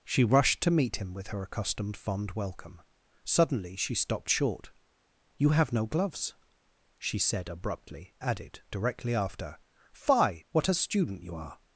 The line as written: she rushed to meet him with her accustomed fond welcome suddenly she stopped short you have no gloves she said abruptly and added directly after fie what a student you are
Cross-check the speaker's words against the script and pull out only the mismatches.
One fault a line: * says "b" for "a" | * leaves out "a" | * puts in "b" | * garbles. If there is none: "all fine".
* leaves out "and"